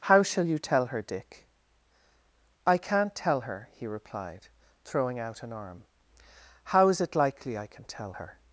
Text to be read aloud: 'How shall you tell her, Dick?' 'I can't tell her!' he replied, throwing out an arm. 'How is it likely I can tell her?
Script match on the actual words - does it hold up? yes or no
yes